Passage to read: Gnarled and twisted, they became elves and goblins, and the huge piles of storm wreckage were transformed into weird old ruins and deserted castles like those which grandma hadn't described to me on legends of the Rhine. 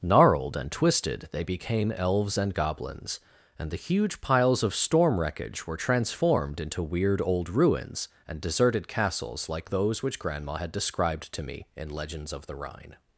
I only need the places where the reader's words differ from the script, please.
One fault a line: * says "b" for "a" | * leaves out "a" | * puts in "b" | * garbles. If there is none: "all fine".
* says "had" for "hadn't"
* says "in" for "on"